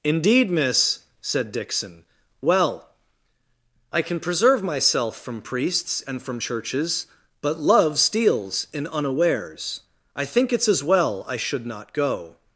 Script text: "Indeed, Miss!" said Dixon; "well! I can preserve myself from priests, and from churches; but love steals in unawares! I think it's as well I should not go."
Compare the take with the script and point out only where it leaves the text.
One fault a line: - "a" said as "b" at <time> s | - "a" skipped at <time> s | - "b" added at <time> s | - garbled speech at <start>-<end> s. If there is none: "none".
none